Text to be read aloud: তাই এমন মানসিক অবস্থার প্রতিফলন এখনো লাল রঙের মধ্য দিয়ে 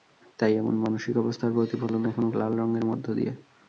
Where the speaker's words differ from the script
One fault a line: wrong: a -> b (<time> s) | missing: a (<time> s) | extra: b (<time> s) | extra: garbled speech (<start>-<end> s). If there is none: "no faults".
no faults